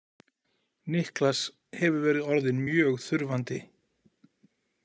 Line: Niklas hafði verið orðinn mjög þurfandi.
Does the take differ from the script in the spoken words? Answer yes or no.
yes